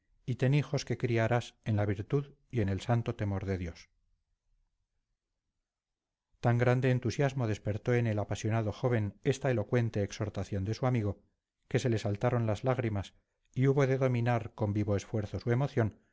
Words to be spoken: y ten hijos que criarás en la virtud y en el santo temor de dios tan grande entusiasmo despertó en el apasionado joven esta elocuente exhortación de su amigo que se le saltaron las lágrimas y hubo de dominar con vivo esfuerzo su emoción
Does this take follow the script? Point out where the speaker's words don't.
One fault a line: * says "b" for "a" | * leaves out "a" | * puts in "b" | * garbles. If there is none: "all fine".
all fine